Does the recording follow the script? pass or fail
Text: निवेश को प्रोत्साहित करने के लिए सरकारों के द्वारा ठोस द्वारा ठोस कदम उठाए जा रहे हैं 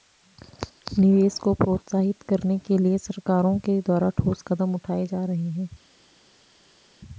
fail